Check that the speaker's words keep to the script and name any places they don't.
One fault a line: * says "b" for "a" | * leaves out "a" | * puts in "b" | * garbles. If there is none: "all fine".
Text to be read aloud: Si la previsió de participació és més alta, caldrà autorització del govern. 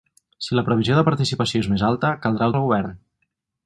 * leaves out "autorització"